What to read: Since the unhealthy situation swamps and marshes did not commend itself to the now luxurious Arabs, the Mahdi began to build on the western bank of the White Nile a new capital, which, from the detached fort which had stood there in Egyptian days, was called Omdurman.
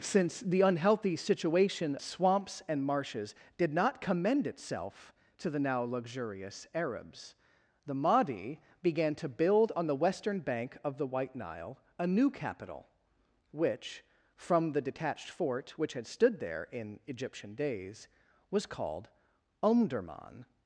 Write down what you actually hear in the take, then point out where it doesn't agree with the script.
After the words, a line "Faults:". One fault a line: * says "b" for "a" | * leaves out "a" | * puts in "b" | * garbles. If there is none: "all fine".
Since the unhealthy situation swamps and marshes did not commend itself to the now luxurious Arabs, the Mahdi began to build on the western bank of the White Nile a new capital, which, from the detached fort which had stood there in Egyptian days, was called Omdurman.
Faults:
all fine